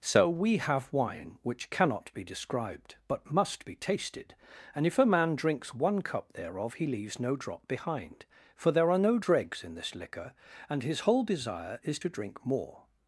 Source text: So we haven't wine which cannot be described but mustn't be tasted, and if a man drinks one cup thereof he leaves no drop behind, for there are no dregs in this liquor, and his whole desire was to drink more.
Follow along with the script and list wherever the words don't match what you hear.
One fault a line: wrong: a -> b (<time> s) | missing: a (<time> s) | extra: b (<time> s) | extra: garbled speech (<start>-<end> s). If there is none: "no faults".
wrong: haven't -> have (0.6 s)
wrong: mustn't -> must (3.3 s)
wrong: was -> is (11.8 s)